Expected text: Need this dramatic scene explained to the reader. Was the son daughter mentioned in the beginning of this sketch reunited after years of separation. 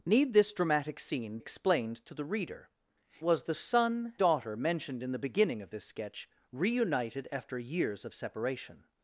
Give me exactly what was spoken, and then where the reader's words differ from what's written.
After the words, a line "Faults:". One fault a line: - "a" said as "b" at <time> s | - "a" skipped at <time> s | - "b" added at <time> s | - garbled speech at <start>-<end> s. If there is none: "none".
Need this dramatic scene explained to the reader. Was the son daughter mentioned in the beginning of this sketch reunited after years of separation.
Faults:
none